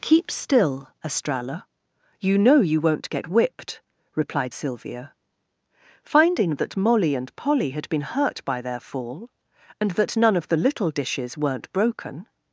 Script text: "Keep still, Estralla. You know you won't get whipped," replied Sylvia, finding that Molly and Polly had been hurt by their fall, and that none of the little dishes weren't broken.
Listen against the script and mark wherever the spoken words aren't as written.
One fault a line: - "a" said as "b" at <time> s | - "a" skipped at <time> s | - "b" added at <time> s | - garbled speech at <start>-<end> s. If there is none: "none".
none